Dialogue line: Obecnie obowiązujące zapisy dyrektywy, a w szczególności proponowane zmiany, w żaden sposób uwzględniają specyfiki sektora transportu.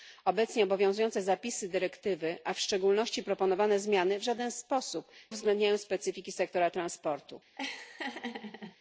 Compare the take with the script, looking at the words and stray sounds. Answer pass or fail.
fail